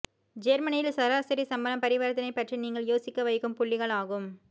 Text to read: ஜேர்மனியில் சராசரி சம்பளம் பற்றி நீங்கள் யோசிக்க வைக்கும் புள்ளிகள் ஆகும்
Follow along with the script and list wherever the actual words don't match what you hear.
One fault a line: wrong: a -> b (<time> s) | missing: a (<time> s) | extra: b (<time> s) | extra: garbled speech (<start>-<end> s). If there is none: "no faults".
extra: பரிவர்த்தனை (1.8 s)